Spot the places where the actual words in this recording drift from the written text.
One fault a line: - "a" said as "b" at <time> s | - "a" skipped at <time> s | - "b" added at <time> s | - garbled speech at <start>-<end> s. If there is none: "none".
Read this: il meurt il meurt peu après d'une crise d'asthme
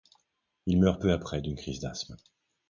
- "il meurt" skipped at 1.0 s